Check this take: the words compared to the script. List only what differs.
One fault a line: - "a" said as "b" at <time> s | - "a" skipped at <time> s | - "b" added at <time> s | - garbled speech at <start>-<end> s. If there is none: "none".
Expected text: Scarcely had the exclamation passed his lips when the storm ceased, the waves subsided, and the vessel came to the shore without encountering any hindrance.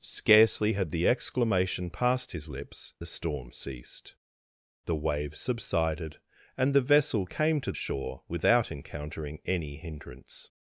- "when" skipped at 2.9 s
- "the" skipped at 7.7 s